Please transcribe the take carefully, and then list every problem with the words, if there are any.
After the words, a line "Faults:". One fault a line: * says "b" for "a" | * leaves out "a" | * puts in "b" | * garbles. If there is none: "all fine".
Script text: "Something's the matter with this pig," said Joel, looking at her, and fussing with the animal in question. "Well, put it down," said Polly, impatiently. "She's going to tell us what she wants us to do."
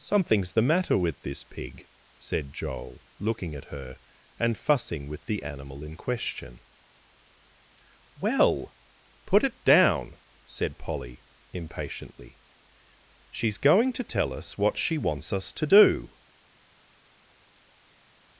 "Something's the matter with this pig," said Joel, looking at her, and fussing with the animal in question. "Well, put it down," said Polly, impatiently. "She's going to tell us what she wants us to do."
Faults:
all fine